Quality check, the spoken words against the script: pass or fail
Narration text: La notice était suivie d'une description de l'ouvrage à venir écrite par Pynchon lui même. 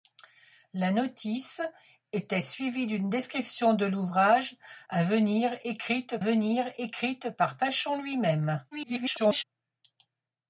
fail